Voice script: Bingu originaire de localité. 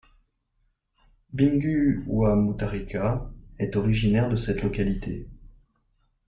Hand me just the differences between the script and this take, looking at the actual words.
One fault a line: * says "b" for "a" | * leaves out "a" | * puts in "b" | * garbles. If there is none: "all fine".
* puts in "wa Mutharika est"
* puts in "cette"